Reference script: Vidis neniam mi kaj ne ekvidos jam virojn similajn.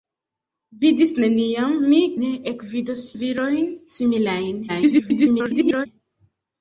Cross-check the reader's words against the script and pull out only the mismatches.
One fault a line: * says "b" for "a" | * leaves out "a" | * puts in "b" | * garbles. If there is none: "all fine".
* leaves out "kaj"
* leaves out "jam"
* garbles